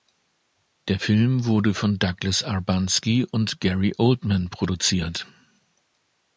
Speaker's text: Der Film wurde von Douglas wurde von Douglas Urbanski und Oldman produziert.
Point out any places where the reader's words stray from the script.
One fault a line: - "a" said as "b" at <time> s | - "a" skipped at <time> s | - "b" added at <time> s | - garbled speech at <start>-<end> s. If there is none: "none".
- "wurde von Douglas" skipped at 2.4 s
- "Gary" added at 3.6 s